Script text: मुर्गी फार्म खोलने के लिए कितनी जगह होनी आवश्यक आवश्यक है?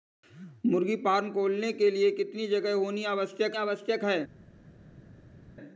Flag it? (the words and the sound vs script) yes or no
no